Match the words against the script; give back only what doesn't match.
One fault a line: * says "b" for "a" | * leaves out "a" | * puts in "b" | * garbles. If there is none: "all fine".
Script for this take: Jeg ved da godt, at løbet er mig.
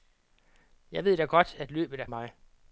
all fine